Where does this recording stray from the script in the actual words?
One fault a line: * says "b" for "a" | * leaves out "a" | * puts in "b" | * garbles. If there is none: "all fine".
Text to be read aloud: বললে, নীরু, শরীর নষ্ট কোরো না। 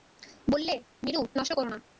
* leaves out "শরীর"